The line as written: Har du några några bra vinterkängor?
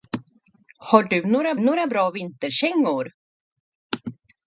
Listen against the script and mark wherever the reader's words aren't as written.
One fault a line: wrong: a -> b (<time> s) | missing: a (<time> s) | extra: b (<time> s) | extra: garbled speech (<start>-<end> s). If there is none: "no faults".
no faults